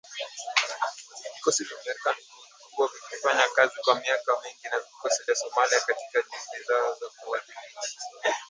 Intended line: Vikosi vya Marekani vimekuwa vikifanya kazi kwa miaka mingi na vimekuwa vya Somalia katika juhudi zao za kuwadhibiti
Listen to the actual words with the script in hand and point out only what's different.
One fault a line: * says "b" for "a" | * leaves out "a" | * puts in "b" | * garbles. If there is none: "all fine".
* says "vikosi" for "vimekuwa"